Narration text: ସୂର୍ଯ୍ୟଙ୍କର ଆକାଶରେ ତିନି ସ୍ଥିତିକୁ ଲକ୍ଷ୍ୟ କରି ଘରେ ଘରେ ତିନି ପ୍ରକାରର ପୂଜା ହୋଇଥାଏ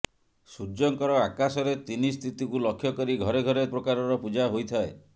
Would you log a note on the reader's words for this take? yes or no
yes